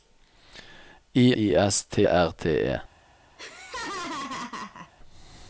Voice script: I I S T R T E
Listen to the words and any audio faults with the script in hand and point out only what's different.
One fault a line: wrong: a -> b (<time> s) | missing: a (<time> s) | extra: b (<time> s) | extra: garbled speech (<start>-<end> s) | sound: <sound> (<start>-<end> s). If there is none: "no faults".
sound: laugh (3.4-4.9 s)